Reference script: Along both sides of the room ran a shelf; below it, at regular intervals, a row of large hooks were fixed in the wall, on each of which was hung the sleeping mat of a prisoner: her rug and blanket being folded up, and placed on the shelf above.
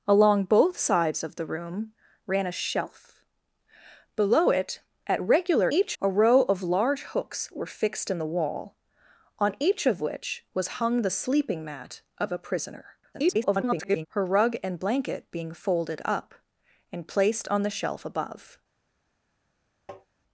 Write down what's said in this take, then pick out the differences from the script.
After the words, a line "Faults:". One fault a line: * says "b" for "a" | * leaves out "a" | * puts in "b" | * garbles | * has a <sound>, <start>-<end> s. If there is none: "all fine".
Along both sides of the room ran a shelf; below it, at regular each, a row of large hooks were fixed in the wall, on each of which was hung the sleeping mat of a prisoner: [garbled] her rug and blanket being folded up, and placed on the shelf above.
Faults:
* says "each" for "intervals"
* garbles
* has a tap, 19.9-20.1 s